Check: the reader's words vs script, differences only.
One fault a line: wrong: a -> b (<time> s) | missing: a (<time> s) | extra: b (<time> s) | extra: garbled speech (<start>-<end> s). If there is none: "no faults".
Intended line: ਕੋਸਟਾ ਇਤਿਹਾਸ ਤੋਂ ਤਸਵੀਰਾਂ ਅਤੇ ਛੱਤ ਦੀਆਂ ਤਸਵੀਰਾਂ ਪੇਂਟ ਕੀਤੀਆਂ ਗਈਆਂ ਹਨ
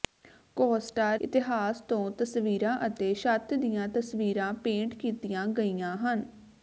no faults